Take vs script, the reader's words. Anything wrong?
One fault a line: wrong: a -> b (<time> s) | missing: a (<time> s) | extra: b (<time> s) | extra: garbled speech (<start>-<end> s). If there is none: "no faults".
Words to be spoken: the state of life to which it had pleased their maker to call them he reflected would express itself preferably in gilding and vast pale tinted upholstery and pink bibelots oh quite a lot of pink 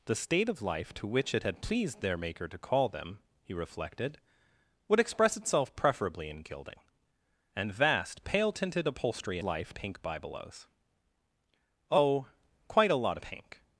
wrong: and -> life (9.4 s)
missing: of (13.2 s)